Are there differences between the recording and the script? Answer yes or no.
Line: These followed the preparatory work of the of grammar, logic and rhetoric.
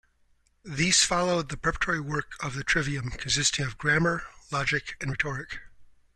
yes